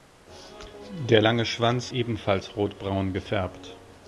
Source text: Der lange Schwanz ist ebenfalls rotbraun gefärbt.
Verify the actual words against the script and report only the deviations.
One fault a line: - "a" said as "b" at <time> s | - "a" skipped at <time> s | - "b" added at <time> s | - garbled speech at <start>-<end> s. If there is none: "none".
- "ist" skipped at 1.9 s